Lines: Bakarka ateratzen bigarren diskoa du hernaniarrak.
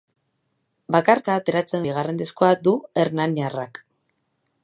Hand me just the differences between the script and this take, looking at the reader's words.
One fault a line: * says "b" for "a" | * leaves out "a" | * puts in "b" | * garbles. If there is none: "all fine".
all fine